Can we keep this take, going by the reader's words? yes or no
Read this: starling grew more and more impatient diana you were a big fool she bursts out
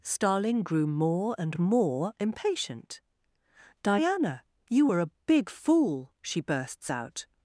yes